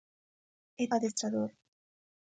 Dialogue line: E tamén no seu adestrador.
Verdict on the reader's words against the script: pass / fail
fail